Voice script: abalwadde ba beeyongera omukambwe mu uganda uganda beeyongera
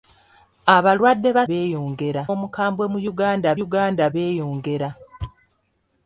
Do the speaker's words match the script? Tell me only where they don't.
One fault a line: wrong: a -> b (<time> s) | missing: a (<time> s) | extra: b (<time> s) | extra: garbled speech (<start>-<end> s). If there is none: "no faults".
no faults